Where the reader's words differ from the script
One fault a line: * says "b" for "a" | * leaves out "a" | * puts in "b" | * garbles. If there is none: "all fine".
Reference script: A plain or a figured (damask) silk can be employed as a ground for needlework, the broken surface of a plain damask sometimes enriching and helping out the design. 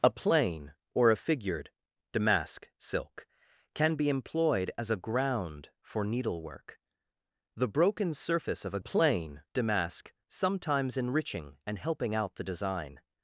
all fine